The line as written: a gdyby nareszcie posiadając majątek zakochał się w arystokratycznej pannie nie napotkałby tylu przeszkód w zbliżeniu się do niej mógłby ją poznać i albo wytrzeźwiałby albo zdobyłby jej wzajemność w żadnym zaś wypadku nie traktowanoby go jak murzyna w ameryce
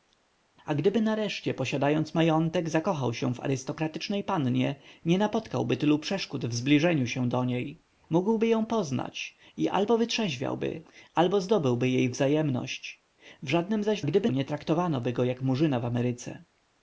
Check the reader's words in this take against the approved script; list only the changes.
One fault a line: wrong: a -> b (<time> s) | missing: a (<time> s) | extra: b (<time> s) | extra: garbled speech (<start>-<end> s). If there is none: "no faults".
wrong: wypadku -> gdyby (14.0 s)